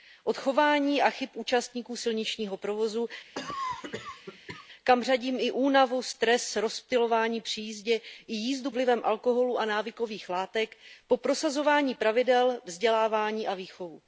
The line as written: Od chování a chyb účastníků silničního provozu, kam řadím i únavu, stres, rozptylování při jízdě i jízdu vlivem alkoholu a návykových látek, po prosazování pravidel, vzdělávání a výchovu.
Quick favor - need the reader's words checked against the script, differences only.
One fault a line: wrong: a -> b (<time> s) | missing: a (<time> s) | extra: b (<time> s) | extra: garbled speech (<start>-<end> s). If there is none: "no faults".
no faults